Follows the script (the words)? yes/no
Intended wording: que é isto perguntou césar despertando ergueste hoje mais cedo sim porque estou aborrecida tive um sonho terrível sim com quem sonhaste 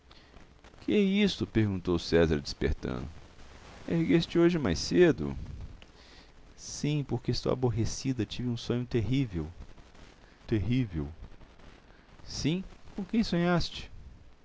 no